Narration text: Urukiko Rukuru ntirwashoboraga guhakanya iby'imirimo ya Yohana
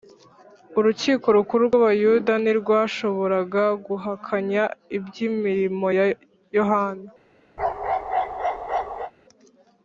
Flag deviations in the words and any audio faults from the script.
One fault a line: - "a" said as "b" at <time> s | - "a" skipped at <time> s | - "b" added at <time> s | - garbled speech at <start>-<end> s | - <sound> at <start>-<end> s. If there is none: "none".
- "rw'Abayuda" added at 1.7 s
- bark at 7.6-9.1 s